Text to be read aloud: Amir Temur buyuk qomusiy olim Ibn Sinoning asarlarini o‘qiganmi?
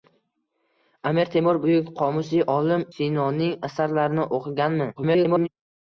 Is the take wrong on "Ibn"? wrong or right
wrong